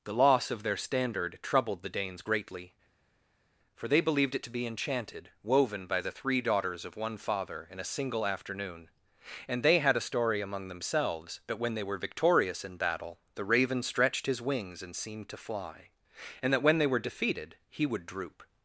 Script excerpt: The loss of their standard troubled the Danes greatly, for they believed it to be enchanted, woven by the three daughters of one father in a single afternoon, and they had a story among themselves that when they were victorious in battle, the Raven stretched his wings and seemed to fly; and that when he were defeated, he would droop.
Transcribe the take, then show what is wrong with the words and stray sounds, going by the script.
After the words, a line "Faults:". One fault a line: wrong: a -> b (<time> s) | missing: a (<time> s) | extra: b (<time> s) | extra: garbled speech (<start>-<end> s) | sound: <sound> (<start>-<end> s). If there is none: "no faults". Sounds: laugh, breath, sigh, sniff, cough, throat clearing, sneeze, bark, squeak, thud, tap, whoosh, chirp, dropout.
The loss of their standard troubled the Danes greatly, for they believed it to be enchanted, woven by the three daughters of one father in a single afternoon, and they had a story among themselves that when they were victorious in battle, the Raven stretched his wings and seemed to fly; and that when they were defeated, he would droop.
Faults:
wrong: he -> they (16.8 s)